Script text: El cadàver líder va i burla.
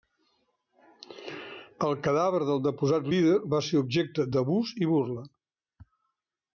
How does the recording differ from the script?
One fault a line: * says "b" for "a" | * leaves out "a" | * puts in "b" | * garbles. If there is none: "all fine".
* puts in "del deposat"
* puts in "ser objecte d'abús"